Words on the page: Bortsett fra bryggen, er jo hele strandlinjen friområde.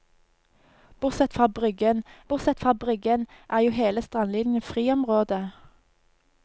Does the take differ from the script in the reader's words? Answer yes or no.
yes